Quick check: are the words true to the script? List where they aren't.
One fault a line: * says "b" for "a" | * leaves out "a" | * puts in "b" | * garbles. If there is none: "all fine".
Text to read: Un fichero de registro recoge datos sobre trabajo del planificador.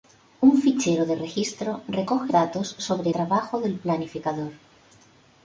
all fine